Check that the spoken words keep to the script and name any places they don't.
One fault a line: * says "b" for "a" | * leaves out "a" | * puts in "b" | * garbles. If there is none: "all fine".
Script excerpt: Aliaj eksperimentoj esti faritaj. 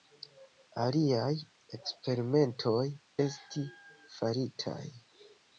all fine